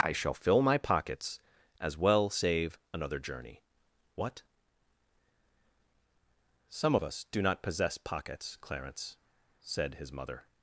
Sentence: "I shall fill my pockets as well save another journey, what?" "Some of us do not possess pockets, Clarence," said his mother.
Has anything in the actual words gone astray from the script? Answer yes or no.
no